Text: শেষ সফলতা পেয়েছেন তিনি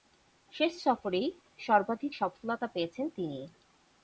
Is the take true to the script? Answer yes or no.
no